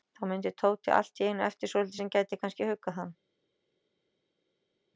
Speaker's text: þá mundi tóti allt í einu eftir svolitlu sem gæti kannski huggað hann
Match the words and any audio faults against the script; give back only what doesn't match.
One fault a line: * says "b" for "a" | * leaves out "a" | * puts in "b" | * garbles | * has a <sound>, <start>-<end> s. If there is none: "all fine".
all fine